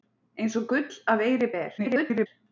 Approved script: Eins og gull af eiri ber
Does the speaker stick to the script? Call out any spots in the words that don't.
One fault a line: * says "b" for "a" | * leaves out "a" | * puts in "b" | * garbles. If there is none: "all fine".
* garbles